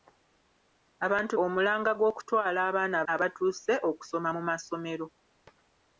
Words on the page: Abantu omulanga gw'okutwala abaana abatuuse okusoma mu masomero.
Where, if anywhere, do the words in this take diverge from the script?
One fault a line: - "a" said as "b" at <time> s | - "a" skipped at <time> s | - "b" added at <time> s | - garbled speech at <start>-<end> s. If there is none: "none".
none